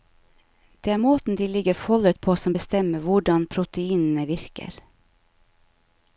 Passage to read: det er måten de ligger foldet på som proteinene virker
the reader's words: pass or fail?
fail